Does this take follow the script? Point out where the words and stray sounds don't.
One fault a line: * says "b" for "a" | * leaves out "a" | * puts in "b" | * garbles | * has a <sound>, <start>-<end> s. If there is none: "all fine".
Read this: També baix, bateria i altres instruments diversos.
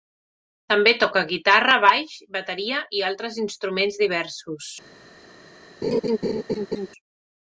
* puts in "toca guitarra"
* has a laugh, 5.8-6.9 s